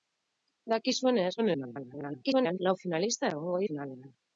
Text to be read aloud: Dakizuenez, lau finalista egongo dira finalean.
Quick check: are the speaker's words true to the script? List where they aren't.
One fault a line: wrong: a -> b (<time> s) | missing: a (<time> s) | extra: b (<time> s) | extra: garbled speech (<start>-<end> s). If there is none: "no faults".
extra: garbled speech (1.4-2.6 s)
missing: dira (3.6 s)